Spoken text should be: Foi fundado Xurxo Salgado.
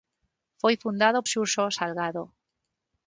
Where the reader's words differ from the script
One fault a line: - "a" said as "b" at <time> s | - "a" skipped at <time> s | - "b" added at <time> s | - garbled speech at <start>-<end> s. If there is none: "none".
none